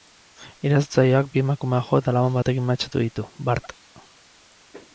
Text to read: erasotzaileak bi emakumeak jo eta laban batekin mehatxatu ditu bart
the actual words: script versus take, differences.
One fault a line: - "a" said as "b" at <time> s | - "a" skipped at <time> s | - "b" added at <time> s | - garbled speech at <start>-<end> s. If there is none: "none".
none